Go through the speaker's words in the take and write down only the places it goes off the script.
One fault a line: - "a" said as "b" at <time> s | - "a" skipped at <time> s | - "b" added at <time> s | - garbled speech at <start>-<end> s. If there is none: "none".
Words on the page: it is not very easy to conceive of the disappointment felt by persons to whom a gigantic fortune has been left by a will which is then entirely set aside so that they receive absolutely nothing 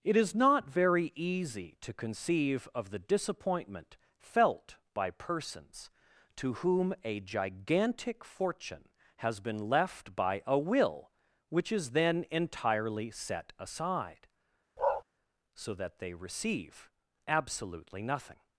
none